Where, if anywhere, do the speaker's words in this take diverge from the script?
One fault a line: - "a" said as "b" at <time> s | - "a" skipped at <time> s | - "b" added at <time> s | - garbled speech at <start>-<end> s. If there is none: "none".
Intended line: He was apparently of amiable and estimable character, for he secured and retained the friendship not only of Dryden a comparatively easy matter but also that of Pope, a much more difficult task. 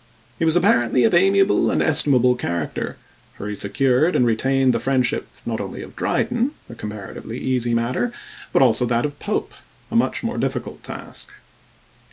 none